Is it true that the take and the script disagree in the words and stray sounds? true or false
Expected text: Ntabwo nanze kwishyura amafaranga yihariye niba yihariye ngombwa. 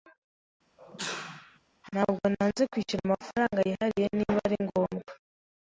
true